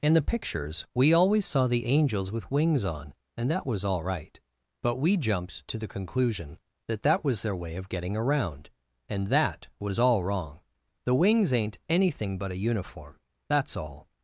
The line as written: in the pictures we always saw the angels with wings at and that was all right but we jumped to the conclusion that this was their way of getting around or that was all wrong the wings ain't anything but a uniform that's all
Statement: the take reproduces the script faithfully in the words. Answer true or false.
false